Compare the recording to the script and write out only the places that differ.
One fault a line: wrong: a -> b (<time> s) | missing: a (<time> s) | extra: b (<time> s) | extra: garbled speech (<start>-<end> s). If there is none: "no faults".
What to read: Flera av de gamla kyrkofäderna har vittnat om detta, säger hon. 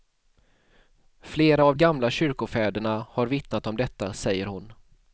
missing: de (1.7 s)